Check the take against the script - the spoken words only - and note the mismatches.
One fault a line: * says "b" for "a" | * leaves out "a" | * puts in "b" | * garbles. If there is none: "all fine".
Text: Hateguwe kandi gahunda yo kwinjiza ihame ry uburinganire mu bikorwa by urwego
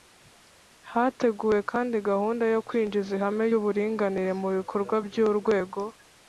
* leaves out "ry"